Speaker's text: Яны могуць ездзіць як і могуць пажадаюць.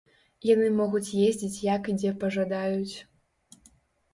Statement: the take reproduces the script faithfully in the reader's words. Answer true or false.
false